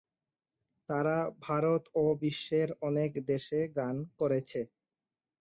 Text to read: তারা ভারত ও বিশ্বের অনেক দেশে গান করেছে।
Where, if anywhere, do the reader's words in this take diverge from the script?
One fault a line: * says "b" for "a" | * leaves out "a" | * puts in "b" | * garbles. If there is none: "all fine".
all fine